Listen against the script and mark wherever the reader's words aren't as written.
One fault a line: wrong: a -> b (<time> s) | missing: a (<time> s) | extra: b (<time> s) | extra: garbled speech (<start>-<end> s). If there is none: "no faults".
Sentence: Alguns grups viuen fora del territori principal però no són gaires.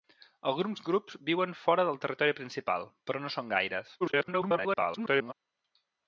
extra: garbled speech (4.0-5.3 s)